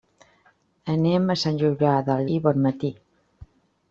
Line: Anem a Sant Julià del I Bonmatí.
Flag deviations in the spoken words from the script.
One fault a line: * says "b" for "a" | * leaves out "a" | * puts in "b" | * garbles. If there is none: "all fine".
all fine